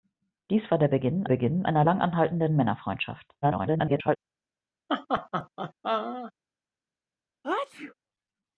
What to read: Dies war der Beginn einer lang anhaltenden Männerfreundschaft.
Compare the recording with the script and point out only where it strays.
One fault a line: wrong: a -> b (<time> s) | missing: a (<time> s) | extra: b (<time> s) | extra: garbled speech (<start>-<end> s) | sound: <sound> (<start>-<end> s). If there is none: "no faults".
extra: Beginn (1.2 s)
extra: garbled speech (3.4-4.2 s)
sound: laugh (4.9-6.3 s)
sound: sneeze (7.4-7.9 s)